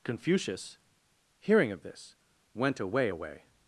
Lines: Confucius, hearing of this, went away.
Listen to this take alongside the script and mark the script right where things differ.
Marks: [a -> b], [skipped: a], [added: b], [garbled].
Confucius, hearing of this, went away. [added: away]